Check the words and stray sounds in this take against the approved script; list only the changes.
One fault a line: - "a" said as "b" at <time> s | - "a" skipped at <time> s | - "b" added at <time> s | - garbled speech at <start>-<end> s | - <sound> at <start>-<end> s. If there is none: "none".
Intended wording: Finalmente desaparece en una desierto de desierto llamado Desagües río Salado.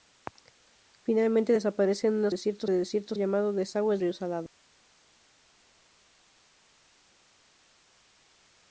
none